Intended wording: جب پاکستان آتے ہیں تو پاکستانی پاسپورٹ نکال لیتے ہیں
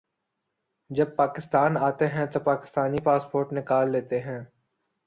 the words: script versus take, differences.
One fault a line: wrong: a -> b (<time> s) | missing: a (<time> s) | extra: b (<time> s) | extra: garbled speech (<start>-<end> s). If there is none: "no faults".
no faults